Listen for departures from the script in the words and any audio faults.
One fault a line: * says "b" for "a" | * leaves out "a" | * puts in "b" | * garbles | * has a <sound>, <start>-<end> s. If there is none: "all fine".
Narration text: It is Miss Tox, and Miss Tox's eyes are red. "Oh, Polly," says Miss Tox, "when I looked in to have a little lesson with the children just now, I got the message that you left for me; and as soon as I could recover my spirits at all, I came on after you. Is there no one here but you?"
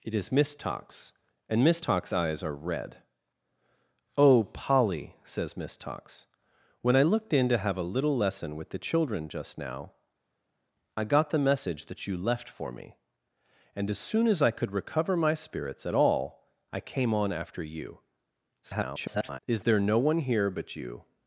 * garbles